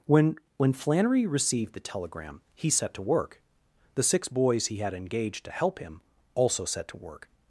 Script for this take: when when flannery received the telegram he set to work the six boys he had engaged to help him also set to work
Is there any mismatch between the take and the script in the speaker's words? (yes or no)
no